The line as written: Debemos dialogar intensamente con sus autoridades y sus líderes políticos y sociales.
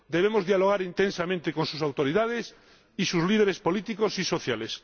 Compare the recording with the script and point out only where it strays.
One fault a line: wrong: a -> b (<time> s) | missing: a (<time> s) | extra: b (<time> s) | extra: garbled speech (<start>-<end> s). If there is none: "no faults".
no faults